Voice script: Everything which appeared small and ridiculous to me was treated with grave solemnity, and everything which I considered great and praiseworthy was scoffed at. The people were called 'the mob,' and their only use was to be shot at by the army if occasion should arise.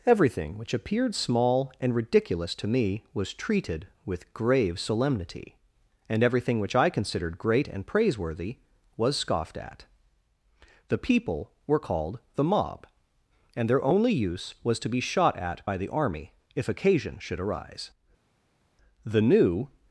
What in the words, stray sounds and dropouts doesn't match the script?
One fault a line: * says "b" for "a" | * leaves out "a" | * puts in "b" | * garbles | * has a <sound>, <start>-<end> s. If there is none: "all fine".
* puts in "The new"